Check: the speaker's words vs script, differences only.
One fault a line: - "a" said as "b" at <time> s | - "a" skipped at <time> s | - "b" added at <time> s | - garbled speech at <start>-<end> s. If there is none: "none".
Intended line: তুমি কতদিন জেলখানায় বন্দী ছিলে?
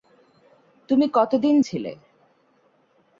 - "জেলখানায় বন্দী" skipped at 1.6 s